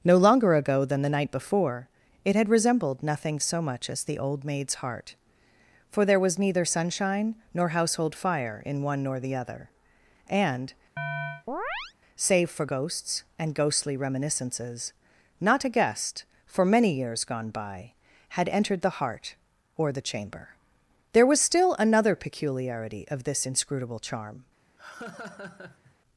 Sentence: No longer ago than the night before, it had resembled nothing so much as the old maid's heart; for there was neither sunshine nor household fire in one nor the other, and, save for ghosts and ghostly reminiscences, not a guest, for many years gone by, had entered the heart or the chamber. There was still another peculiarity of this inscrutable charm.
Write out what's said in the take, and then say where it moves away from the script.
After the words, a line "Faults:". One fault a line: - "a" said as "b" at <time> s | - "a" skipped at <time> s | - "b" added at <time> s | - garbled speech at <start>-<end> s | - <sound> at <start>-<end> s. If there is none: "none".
No longer ago than the night before, it had resembled nothing so much as the old maid's heart; for there was neither sunshine nor household fire in one nor the other, and, save for ghosts and ghostly reminiscences, not a guest, for many years gone by, had entered the heart or the chamber. There was still another peculiarity of this inscrutable charm.
Faults:
- chirp at 11.0-11.9 s
- laugh at 24.8-25.9 s